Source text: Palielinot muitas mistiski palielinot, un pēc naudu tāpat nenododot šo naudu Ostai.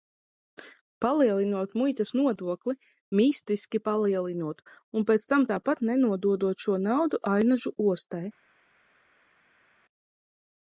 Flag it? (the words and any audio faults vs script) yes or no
yes